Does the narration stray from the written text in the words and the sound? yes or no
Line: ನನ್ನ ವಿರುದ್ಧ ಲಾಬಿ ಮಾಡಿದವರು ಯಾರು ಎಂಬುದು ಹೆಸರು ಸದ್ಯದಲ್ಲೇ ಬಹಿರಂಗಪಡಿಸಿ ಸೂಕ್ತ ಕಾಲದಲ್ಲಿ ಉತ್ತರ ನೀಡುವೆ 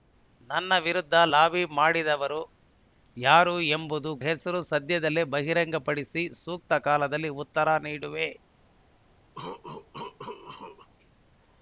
yes